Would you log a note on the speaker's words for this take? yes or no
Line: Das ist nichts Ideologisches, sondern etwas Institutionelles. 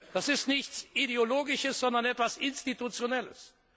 no